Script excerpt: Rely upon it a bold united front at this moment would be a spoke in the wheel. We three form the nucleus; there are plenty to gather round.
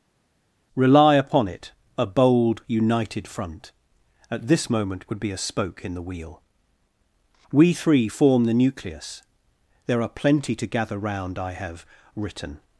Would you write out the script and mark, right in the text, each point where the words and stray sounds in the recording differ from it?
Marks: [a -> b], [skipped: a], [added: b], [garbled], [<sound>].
Rely upon it a bold united front at this moment would be a spoke in the wheel. We three form the nucleus; there are plenty to gather round. [added: I have written]